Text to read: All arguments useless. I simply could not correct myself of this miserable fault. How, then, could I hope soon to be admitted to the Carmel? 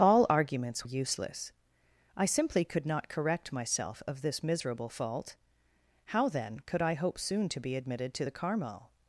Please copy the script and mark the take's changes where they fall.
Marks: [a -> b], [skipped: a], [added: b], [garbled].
All arguments useless. I simply could not correct myself of this miserable fault. How, then, could I hope soon to be admitted to the Carmel?